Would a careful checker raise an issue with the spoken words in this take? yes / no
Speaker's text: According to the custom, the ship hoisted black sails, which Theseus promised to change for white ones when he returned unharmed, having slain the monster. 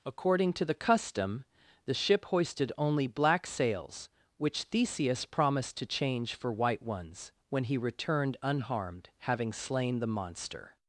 yes